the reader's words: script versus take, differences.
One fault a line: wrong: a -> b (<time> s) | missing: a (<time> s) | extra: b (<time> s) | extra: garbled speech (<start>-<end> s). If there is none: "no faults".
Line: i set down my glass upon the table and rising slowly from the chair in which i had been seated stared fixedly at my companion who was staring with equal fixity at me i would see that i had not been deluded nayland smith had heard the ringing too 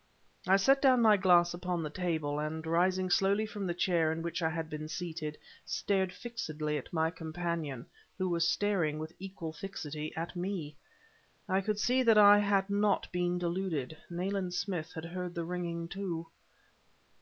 wrong: would -> could (11.6 s)